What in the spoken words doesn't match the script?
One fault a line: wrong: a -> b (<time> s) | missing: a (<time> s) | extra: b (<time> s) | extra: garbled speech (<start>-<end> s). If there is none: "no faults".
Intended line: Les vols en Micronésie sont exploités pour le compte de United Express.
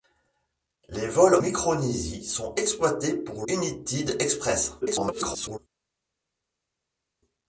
missing: en (1.4 s)
missing: le compte de (3.5 s)
extra: garbled speech (4.8-5.6 s)